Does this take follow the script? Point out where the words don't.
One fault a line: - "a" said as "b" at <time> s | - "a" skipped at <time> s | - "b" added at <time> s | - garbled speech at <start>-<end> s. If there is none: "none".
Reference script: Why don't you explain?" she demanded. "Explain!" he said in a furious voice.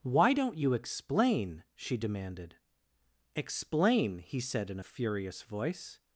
none